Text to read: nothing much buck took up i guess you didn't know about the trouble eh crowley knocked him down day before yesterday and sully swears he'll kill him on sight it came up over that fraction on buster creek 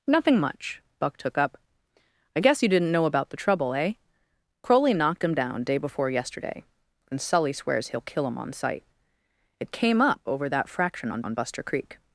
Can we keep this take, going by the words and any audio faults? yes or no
no